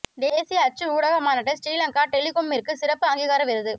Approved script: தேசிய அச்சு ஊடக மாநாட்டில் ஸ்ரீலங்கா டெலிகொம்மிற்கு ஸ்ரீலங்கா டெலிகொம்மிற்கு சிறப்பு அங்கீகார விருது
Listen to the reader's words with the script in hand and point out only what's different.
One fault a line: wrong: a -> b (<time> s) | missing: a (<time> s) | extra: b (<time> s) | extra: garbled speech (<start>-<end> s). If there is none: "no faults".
missing: ஸ்ரீலங்கா டெலிகொம்மிற்கு (2.7 s)